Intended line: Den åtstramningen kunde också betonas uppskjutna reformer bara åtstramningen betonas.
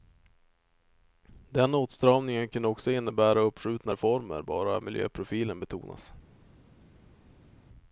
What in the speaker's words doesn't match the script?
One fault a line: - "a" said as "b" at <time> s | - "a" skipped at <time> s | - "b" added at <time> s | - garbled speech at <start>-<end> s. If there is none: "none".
- "betonas" said as "innebära" at 2.9 s
- "åtstramningen" said as "miljöprofilen" at 4.8 s